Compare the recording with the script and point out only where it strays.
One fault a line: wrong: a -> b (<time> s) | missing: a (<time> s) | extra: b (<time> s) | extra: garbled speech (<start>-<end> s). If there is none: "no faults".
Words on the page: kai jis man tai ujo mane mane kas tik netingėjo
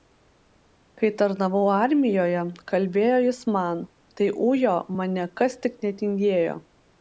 extra: tarnavau armijoje kalbėjo (1.2 s)
missing: mane (5.3 s)